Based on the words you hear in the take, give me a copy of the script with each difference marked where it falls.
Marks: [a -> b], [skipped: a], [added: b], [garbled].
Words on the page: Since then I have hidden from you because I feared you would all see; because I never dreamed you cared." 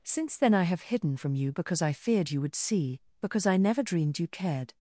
Since then I have hidden from you because I feared you would [skipped: all] see; because I never dreamed you cared."